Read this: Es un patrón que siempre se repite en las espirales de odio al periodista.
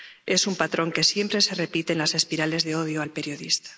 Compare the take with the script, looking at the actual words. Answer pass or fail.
pass